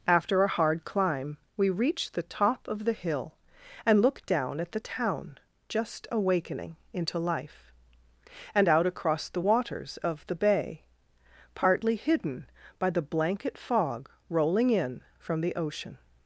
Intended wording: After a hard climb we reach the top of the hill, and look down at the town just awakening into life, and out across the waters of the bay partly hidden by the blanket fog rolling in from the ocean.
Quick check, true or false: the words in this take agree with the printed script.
true